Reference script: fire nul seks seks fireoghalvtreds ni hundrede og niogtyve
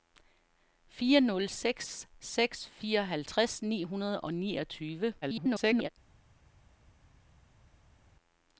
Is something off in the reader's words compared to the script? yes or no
yes